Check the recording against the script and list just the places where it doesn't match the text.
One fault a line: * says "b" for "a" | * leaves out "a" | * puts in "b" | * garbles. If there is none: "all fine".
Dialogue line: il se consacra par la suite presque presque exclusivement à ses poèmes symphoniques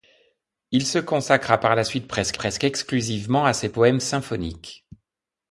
all fine